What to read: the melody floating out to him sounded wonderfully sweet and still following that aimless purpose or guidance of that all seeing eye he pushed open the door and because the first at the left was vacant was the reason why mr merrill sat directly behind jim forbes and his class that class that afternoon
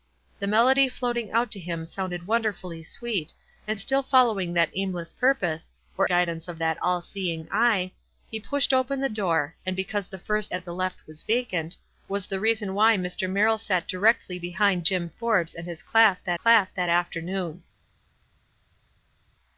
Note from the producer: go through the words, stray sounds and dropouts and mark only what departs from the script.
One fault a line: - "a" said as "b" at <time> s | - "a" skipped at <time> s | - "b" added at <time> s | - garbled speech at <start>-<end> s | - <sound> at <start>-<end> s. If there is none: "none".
none